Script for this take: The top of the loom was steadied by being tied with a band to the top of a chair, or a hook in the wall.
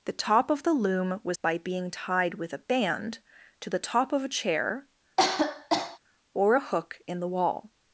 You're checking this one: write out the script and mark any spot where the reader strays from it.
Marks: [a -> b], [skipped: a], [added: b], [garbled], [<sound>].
The top of the loom was [skipped: steadied] by being tied with a band to the top of a chair, [cough] or a hook in the wall.